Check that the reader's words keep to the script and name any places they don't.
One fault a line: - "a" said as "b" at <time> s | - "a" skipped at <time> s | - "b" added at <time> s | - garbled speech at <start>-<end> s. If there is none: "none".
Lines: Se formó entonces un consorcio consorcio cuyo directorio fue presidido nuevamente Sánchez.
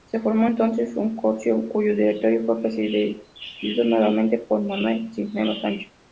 - "consorcio" skipped at 1.7 s
- "por Manuel Cisneros" added at 4.4 s